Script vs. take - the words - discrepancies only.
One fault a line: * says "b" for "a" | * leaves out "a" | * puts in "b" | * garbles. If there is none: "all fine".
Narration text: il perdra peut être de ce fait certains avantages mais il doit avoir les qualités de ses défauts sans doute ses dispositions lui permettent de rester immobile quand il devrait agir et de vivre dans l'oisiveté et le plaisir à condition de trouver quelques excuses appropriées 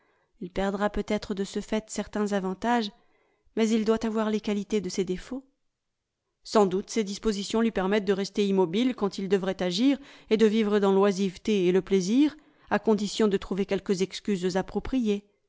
all fine